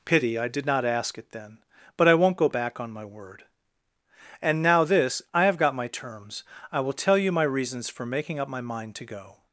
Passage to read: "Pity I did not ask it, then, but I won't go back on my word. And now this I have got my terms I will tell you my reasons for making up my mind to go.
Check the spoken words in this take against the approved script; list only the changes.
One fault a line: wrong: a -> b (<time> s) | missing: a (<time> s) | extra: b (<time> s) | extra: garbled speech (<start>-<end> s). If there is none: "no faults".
no faults